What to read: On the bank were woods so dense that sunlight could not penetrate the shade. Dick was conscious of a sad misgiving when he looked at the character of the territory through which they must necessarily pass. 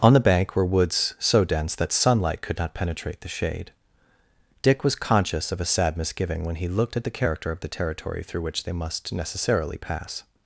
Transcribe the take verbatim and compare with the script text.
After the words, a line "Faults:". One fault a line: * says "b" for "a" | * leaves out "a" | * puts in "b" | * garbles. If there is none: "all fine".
On the bank were woods so dense that sunlight could not penetrate the shade. Dick was conscious of a sad misgiving when he looked at the character of the territory through which they must necessarily pass.
Faults:
all fine